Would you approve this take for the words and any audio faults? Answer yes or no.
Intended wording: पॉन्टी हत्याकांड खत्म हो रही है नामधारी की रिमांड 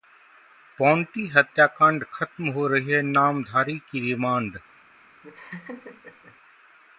no